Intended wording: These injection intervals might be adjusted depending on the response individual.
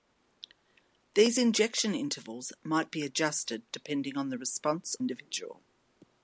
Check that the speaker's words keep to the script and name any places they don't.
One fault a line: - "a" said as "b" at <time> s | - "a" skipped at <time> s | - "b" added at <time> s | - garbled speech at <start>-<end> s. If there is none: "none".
none